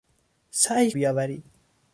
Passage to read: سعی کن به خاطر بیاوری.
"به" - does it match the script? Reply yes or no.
no